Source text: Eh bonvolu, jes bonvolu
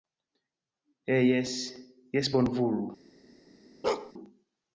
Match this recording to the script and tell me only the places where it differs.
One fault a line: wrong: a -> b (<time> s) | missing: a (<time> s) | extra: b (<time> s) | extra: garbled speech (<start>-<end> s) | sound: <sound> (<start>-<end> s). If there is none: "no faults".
wrong: bonvolu -> jes (1.3 s)
sound: bark (3.8-4.1 s)